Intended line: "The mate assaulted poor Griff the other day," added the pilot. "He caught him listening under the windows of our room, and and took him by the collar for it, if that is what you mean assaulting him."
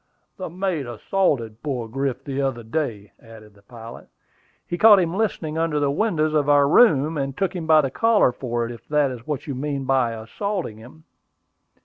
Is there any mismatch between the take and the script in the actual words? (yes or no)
yes